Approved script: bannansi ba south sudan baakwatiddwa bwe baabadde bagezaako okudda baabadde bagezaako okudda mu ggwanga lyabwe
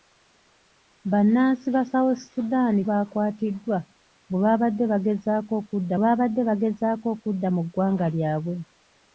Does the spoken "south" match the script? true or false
true